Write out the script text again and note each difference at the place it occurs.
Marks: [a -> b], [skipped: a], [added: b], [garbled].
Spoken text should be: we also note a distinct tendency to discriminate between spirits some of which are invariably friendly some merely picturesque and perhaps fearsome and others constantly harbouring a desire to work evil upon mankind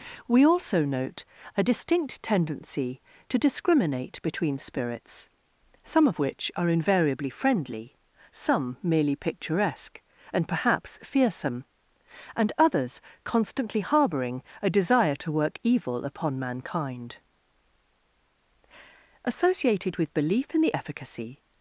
we also note a distinct tendency to discriminate between spirits some of which are invariably friendly some merely picturesque and perhaps fearsome and others constantly harbouring a desire to work evil upon mankind [added: associated with belief in the efficacy]